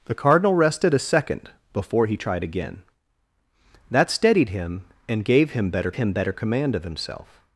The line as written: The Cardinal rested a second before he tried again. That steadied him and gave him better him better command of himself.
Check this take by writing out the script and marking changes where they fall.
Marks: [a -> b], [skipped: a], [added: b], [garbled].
The Cardinal rested a second before he tried again. That steadied him and gave him better him better command of himself.